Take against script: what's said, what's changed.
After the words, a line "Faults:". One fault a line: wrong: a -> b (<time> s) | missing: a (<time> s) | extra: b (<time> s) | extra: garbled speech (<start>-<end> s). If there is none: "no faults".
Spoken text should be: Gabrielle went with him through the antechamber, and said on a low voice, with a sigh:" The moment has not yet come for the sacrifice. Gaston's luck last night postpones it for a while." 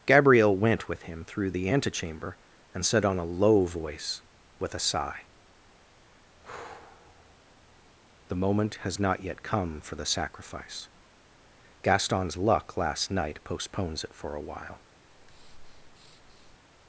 Gabrielle went with him through the antechamber, and said on a low voice, with a sigh:" The moment has not yet come for the sacrifice. Gaston's luck last night postpones it for a while."
Faults:
no faults